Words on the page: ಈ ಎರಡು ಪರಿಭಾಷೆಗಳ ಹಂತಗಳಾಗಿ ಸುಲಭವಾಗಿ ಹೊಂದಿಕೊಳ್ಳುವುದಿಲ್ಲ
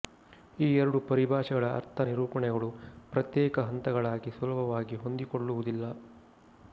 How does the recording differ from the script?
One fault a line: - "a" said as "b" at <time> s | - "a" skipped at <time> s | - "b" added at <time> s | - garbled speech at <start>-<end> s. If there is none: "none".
- "ಅರ್ಥ ನಿರೂಪಣೆಗಳು ಪ್ರತ್ಯೇಕ" added at 1.7 s